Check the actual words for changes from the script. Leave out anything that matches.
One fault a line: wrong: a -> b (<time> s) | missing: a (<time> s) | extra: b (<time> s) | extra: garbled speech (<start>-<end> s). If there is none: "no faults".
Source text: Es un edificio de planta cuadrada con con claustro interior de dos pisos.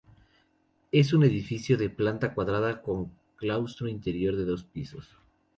missing: con (3.1 s)